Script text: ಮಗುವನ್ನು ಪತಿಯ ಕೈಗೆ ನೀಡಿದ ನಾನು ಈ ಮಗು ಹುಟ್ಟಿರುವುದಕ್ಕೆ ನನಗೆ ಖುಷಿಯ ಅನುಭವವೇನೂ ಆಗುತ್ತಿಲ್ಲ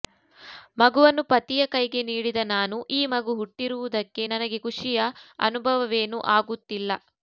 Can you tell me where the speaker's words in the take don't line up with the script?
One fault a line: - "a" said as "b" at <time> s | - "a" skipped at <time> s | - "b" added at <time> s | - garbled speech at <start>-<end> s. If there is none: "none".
none